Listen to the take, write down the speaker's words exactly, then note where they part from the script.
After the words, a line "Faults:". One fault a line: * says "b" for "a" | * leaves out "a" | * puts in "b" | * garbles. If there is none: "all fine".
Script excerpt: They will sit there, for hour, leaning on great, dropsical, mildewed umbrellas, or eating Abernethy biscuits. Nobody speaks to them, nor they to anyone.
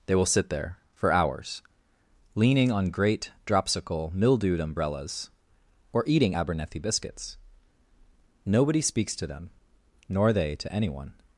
They will sit there, for hours, leaning on great, dropsical, mildewed umbrellas, or eating Abernethy biscuits. Nobody speaks to them, nor they to anyone.
Faults:
* says "hours" for "hour"